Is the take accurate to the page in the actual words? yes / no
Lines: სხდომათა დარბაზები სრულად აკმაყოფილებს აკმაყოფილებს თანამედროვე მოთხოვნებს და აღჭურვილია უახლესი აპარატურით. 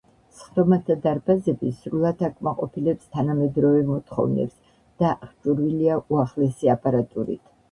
no